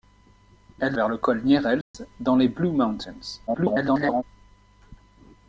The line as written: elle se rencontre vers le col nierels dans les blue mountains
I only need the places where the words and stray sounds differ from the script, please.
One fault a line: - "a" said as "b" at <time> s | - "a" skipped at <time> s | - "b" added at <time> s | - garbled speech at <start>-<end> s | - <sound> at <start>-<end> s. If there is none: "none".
- "se rencontre" skipped at 1.0 s
- dropout at 1.8-1.9 s
- garbled speech at 3.5-4.2 s